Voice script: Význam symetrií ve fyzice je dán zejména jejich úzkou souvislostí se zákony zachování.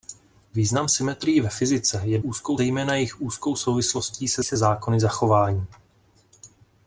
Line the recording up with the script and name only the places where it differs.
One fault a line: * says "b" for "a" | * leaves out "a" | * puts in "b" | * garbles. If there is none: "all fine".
* says "úzkou" for "dán"
* puts in "se"